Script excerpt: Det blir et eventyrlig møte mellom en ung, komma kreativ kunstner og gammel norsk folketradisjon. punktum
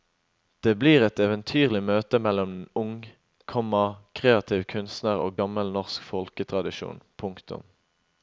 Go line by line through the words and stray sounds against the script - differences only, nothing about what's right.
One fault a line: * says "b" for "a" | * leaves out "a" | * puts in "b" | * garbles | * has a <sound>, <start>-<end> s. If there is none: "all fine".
all fine